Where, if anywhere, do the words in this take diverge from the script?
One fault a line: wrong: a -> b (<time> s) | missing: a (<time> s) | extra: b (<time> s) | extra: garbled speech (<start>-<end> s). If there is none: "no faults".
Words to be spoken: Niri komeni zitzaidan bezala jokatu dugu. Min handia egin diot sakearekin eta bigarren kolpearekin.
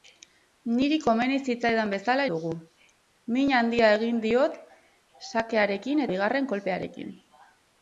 missing: jokatu (2.2 s)
missing: eta (6.1 s)